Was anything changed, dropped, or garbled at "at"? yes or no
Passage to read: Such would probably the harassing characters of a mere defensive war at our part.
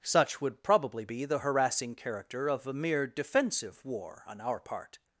yes